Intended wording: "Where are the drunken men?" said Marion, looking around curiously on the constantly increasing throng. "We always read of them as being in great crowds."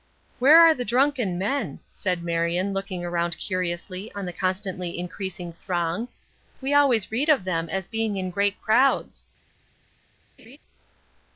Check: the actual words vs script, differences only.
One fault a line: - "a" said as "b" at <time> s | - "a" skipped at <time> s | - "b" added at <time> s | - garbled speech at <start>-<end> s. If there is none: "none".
none